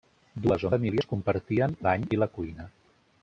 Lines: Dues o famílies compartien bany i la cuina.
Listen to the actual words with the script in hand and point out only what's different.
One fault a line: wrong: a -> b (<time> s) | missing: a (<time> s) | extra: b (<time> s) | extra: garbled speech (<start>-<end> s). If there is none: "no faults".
no faults